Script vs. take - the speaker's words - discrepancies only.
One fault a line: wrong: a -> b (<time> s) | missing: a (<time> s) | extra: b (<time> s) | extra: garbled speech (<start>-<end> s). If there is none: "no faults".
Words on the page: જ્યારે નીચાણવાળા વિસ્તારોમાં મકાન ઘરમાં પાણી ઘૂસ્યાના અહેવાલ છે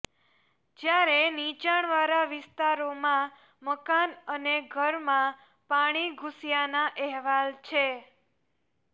extra: અને (4.4 s)